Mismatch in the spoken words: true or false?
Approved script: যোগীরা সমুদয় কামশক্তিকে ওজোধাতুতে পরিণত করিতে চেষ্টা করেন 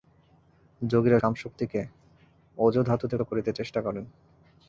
true